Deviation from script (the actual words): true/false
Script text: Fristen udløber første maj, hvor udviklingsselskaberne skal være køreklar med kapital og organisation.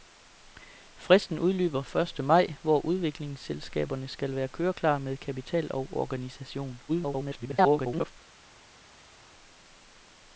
true